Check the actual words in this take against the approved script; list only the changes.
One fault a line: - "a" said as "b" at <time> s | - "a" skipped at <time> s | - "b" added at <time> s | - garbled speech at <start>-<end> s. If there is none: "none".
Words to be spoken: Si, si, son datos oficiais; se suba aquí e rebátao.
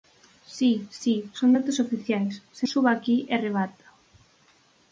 none